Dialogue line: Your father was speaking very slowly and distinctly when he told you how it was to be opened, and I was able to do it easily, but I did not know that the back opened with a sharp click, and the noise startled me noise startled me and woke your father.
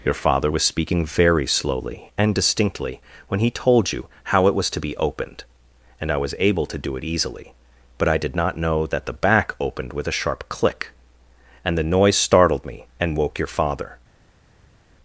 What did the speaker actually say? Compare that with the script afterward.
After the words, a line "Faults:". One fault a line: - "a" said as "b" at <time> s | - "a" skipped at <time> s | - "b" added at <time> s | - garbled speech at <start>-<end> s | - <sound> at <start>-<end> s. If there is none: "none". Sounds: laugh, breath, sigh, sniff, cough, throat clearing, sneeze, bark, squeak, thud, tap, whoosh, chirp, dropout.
Your father was speaking very slowly and distinctly when he told you how it was to be opened, and I was able to do it easily, but I did not know that the back opened with a sharp click, and the noise startled me and woke your father.
Faults:
- "noise startled me" skipped at 12.9 s